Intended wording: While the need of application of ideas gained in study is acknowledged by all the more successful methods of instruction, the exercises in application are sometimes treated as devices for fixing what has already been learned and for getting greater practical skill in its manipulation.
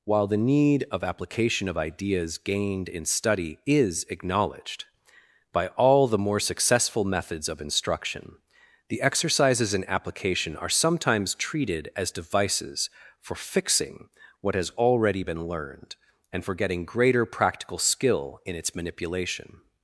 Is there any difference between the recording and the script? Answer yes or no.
no